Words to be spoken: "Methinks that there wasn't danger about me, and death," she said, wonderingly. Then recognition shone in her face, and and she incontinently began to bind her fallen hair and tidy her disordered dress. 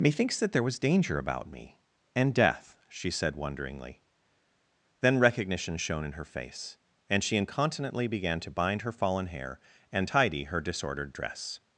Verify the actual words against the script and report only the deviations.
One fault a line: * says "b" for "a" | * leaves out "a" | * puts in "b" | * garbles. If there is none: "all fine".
* says "was" for "wasn't"
* leaves out "and"